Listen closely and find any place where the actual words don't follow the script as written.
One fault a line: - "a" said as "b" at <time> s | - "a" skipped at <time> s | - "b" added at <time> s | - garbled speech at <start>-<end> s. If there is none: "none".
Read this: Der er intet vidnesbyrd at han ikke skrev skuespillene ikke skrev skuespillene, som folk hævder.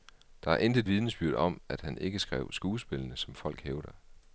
- "om" added at 1.3 s
- "ikke skrev skuespillene" skipped at 3.2 s